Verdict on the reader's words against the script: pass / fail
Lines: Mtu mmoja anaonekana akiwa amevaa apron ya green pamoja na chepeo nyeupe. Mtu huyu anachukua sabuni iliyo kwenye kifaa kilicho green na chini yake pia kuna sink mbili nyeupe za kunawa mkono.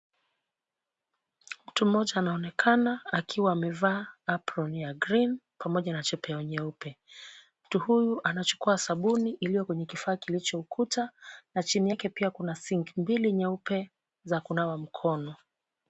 fail